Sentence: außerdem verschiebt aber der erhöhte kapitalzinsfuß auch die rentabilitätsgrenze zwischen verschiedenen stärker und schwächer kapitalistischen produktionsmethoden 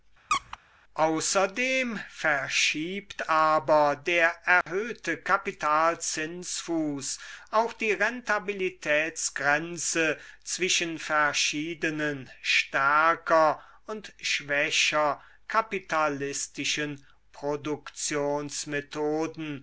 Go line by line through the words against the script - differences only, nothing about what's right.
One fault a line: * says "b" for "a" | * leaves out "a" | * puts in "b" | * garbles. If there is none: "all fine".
all fine